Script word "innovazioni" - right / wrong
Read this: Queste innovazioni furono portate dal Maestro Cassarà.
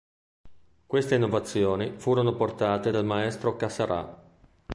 right